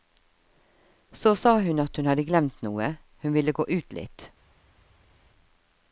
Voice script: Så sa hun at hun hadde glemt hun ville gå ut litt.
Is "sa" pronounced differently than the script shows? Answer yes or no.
no